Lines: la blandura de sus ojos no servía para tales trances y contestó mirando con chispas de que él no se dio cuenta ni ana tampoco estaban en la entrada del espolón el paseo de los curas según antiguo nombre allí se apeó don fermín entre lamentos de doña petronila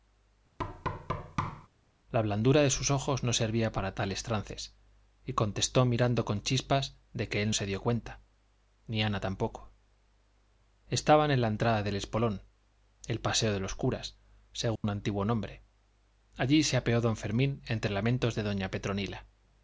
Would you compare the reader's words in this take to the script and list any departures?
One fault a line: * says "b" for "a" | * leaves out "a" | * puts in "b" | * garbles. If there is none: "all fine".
* leaves out "no"